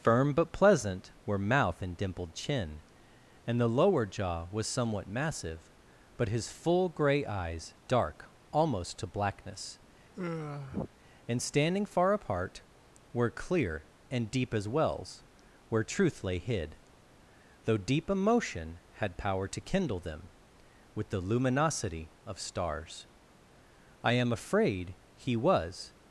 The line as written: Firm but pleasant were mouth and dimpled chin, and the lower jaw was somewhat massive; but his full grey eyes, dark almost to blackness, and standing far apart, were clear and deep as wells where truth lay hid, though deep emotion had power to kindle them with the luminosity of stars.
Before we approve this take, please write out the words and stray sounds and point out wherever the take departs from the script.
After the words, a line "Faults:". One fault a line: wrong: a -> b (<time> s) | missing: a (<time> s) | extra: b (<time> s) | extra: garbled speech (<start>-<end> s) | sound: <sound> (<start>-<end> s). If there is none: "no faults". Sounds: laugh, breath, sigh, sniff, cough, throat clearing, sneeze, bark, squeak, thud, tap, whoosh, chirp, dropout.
Firm but pleasant were mouth and dimpled chin, and the lower jaw was somewhat massive; but his full grey eyes, dark almost to blackness, and standing far apart, were clear and deep as wells where truth lay hid, though deep emotion had power to kindle them with the luminosity of stars. I am afraid he was
Faults:
sound: sigh (10.1-10.9 s)
extra: I am afraid he was (24.0 s)